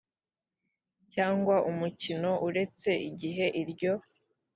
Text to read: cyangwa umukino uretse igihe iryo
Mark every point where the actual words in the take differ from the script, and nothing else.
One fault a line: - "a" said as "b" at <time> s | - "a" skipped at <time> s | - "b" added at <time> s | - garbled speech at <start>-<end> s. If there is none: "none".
none